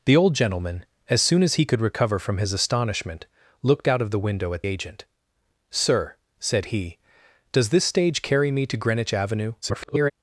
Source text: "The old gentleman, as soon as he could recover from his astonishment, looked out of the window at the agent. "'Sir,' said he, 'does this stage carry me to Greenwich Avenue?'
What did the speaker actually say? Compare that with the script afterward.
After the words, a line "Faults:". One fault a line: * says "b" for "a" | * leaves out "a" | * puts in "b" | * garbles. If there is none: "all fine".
"The old gentleman, as soon as he could recover from his astonishment, looked out of the window at agent. "'Sir,' said he, 'does this stage carry me to Greenwich Avenue?' [garbled]
Faults:
* leaves out "the"
* garbles